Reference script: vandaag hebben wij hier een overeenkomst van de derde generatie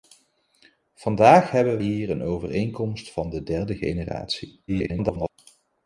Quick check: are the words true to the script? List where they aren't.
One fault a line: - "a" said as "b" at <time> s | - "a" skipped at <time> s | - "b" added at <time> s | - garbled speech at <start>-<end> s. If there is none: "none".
- "wij" skipped at 1.8 s
- garbled speech at 4.7-5.3 s